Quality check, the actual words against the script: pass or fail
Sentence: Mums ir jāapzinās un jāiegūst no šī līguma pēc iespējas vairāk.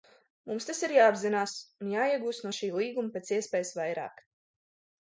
fail